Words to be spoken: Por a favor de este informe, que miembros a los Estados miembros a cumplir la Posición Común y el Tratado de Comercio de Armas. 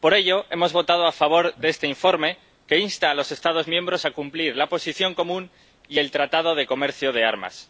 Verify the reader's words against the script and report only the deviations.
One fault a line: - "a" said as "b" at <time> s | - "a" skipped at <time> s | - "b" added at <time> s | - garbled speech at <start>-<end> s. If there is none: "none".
- "ello hemos votado" added at 0.1 s
- "miembros" said as "insta" at 2.8 s